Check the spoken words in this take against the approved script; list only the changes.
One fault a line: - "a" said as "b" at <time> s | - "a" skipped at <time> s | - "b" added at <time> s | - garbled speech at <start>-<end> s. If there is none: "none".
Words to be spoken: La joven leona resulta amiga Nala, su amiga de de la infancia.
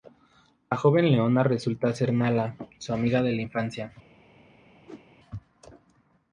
- "amiga" said as "ser" at 1.9 s
- "de" skipped at 3.3 s